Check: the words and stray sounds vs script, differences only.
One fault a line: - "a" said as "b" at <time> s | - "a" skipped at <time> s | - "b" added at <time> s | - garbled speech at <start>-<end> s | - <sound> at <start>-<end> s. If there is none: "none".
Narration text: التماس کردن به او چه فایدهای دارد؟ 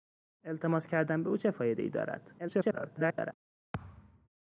- garbled speech at 2.4-3.3 s
- thud at 3.7-4.3 s